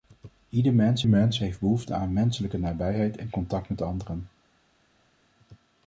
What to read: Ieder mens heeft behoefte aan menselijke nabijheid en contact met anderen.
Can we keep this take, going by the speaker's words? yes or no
no